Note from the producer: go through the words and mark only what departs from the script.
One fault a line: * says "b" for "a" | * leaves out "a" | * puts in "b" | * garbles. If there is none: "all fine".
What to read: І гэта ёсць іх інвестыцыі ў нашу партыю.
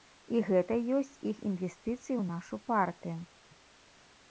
all fine